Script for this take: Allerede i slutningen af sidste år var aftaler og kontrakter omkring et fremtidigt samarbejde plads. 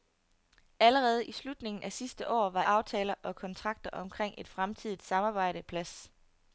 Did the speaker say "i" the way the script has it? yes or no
yes